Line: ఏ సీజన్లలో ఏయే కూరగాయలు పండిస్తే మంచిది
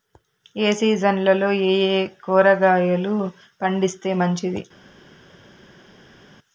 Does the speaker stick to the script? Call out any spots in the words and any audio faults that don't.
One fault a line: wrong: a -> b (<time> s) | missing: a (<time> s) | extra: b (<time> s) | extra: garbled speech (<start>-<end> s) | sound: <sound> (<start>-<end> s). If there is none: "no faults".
no faults